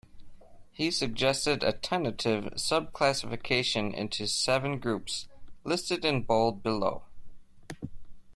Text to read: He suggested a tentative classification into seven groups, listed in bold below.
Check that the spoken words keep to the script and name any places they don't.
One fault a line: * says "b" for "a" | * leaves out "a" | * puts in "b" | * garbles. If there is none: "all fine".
* puts in "sub"